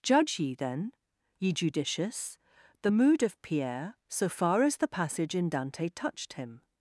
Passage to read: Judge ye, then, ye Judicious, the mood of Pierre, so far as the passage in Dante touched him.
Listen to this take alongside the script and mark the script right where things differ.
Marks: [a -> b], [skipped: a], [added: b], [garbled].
Judge ye, then, ye Judicious, the mood of Pierre, so far as the passage in Dante touched him.